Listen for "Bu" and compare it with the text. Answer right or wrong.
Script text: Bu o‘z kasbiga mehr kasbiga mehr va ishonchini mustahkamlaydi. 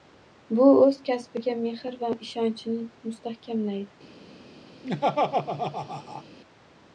right